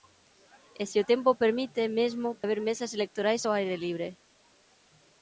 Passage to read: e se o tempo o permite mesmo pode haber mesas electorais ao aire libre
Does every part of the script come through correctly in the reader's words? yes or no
no